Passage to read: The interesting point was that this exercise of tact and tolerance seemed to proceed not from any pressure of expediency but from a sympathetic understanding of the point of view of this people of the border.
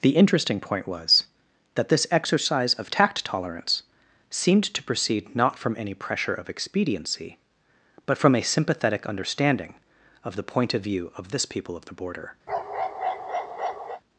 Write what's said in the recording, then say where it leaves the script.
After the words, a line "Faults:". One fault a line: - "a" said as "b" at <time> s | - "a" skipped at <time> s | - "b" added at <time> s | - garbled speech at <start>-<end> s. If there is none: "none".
The interesting point was that this exercise of tact tolerance seemed to proceed not from any pressure of expediency but from a sympathetic understanding of the point of view of this people of the border.
Faults:
- "and" skipped at 3.3 s